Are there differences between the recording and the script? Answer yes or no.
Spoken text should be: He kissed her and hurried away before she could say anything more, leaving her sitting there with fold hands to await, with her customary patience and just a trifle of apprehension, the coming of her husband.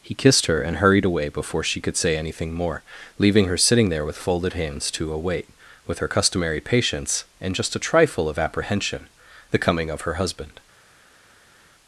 yes